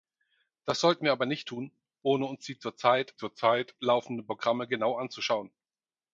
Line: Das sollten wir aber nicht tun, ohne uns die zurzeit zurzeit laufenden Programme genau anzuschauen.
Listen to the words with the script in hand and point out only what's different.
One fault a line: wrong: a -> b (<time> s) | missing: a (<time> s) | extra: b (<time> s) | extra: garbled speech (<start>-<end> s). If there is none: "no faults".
no faults